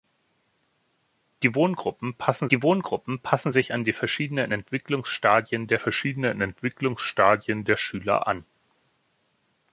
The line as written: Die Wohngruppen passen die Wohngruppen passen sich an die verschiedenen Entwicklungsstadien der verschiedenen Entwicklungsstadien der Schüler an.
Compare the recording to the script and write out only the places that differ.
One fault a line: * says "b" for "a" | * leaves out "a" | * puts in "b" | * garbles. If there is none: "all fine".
all fine